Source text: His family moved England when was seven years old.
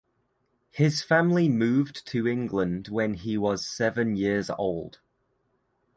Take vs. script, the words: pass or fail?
fail